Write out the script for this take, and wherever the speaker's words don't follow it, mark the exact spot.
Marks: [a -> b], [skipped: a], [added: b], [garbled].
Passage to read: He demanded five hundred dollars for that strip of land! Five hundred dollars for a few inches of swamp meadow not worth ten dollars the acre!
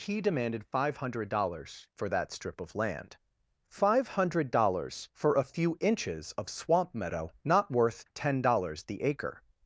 He demanded five hundred dollars for that strip of land! Five hundred dollars for a few inches of swamp meadow not worth ten dollars the acre!